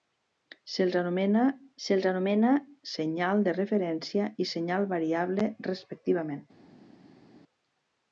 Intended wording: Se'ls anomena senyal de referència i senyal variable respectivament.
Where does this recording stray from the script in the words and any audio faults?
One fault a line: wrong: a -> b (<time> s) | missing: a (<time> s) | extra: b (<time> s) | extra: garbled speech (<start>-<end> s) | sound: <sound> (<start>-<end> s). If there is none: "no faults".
extra: se'ls anomena (1.9 s)